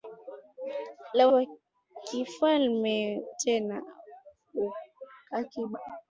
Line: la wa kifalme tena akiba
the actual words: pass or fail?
pass